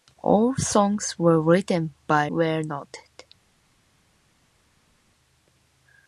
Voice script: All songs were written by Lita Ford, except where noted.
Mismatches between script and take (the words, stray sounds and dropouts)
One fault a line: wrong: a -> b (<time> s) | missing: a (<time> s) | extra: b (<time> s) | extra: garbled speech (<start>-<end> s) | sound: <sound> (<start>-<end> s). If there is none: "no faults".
missing: Lita Ford except (2.3 s)